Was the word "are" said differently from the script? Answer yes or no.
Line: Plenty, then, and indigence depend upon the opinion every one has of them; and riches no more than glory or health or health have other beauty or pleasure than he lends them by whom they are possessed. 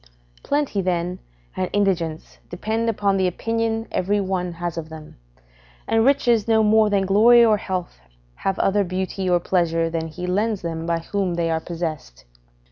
no